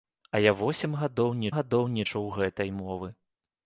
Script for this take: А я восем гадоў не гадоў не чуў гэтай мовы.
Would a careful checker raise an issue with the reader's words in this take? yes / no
no